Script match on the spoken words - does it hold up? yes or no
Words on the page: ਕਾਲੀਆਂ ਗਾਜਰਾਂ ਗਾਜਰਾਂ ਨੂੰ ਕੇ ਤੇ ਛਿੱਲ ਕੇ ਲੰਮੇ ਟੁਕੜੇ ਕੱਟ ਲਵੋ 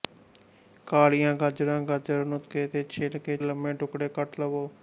yes